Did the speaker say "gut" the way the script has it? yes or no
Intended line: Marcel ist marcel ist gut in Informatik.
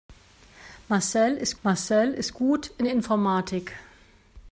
yes